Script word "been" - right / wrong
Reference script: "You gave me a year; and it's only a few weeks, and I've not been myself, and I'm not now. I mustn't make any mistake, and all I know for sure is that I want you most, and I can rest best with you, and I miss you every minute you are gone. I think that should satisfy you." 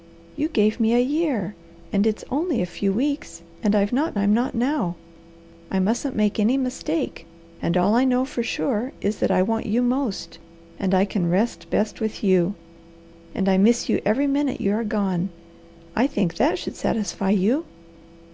wrong